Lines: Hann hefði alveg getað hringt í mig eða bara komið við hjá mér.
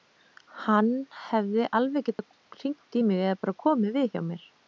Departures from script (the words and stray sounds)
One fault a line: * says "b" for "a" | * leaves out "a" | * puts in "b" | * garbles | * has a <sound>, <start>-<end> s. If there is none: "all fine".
* has a dropout, 2.1-2.2 s